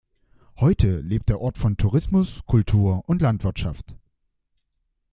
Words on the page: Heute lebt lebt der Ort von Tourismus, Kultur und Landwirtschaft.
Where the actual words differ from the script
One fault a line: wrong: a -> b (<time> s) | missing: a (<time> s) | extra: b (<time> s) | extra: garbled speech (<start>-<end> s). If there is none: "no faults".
missing: lebt (1.3 s)